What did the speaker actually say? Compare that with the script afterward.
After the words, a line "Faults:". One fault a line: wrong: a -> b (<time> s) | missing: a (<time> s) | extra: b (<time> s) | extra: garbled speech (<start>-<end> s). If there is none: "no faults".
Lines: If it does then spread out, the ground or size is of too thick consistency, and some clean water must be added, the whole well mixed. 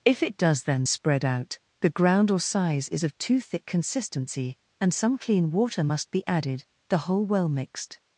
If it does then spread out, the ground or size is of too thick consistency, and some clean water must be added, the whole well mixed.
Faults:
no faults